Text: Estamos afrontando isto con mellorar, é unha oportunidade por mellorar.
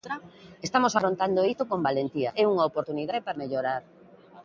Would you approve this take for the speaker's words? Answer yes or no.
no